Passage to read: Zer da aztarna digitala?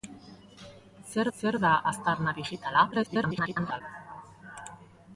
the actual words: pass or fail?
fail